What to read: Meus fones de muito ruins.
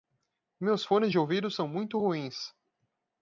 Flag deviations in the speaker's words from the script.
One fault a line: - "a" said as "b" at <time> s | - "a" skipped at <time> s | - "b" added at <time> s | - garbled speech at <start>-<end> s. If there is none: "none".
- "ouvido são" added at 1.2 s